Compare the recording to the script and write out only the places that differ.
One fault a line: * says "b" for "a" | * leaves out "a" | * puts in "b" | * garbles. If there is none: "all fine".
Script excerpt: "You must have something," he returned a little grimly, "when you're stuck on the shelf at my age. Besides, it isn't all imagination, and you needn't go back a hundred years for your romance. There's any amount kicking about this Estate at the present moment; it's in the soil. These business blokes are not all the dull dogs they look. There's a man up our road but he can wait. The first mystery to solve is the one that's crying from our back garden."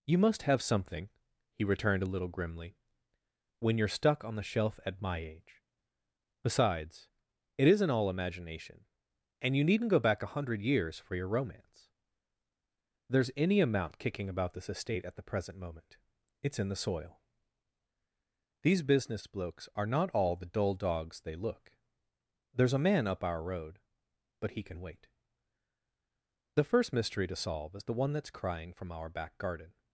all fine